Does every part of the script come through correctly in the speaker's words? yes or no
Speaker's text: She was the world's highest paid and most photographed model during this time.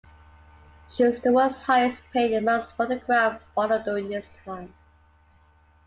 yes